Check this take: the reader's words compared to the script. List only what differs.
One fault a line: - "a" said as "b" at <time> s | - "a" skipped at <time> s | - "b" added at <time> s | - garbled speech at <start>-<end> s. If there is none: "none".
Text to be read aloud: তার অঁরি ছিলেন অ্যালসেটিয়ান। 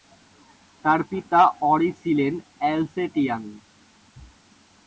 - "পিতা" added at 1.1 s